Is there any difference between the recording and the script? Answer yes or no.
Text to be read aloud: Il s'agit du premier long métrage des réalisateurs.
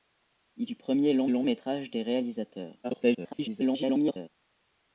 yes